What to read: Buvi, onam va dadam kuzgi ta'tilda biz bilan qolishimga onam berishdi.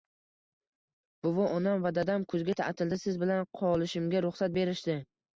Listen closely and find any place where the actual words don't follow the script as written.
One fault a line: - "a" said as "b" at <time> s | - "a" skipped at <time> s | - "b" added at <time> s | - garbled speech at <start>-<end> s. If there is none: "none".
- "biz" said as "siz" at 3.0 s
- "onam" said as "ruxsat" at 4.3 s